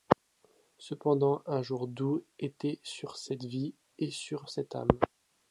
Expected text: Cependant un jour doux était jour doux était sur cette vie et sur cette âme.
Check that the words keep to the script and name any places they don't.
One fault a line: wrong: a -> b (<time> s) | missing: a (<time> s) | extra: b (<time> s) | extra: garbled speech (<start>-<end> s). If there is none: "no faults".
missing: jour doux était (2.8 s)